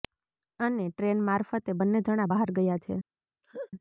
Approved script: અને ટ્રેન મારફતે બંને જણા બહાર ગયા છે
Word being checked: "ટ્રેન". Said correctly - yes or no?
yes